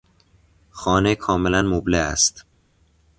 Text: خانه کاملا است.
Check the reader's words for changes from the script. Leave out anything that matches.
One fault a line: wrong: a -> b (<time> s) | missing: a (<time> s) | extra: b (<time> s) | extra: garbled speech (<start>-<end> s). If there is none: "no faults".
extra: مبله (1.6 s)